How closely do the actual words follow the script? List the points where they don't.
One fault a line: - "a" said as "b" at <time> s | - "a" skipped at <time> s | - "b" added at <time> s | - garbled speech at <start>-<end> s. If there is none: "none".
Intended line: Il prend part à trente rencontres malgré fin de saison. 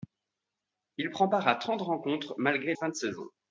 none